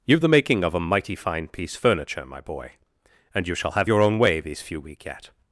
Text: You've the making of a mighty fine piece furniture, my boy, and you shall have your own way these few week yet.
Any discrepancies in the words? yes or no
no